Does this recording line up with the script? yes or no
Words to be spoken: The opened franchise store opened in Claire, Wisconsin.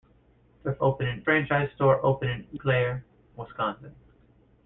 yes